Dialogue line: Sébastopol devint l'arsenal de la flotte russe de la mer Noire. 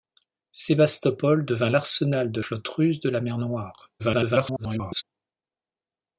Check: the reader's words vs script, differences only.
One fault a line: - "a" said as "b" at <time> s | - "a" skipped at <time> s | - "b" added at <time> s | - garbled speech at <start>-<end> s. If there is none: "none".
- "la" skipped at 2.4 s
- garbled speech at 4.0-5.0 s